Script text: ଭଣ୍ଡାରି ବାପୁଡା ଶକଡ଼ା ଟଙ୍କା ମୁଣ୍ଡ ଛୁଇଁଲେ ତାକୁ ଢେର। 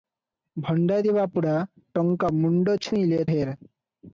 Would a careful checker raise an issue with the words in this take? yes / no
yes